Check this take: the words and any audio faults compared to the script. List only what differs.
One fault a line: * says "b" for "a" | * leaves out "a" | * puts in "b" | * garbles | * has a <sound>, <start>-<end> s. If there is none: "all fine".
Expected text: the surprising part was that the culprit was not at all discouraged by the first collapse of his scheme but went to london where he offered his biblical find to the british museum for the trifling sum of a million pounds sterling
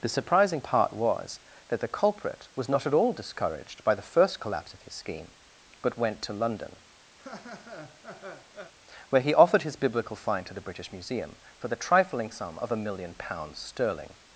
* has a laugh, 7.2-8.7 s